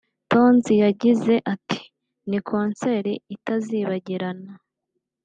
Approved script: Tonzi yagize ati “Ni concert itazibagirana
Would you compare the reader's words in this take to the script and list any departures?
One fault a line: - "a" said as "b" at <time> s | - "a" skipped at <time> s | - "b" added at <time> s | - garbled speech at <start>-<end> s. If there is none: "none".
none